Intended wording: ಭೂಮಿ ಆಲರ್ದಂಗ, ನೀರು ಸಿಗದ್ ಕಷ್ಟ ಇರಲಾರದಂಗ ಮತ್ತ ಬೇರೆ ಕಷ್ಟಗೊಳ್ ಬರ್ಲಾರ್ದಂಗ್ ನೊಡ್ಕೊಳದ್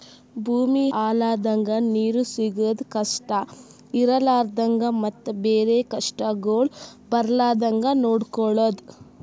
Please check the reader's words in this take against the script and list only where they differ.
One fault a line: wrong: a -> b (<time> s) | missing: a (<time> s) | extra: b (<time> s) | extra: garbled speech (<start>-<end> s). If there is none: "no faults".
no faults